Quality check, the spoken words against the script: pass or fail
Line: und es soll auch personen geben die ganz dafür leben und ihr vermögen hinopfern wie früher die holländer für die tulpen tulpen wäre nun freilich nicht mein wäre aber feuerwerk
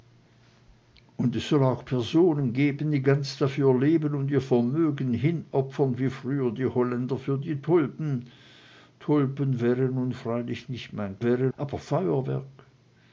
pass